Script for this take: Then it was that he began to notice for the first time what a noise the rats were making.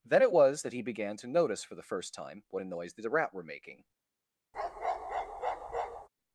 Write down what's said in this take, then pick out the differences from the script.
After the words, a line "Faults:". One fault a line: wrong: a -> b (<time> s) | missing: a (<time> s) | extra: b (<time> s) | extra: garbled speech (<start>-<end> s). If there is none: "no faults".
Then it was that he began to notice for the first time what a noise the rat were making.
Faults:
wrong: rats -> rat (3.1 s)